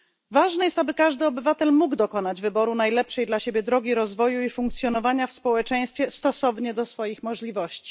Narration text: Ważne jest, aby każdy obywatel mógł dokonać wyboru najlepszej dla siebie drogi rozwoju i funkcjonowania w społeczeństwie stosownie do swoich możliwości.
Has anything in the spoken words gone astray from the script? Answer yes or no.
no